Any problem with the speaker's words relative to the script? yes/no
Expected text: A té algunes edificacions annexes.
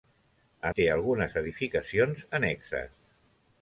no